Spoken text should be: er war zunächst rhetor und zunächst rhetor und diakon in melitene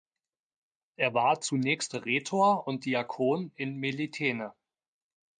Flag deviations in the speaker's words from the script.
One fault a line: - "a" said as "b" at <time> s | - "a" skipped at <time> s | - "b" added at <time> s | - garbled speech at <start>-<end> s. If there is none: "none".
- "zunächst rhetor und" skipped at 2.9 s